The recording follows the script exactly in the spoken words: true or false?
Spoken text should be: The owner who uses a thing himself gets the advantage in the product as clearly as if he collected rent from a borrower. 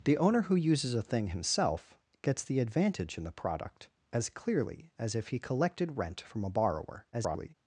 false